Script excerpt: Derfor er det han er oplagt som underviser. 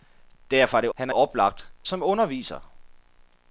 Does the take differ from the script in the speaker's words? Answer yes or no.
no